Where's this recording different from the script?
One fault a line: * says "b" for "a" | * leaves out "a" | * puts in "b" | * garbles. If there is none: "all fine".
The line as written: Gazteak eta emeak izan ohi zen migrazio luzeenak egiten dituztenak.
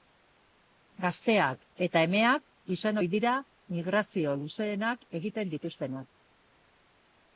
* says "dira" for "zen"